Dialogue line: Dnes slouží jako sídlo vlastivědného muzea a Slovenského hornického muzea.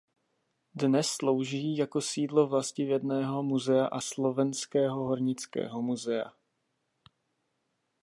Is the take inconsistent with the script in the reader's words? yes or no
no